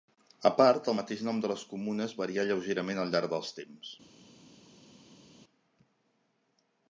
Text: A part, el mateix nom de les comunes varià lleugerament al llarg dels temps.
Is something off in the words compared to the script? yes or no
no